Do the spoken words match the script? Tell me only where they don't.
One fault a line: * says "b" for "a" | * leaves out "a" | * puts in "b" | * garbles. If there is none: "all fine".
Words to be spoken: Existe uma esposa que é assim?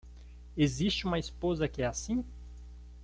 all fine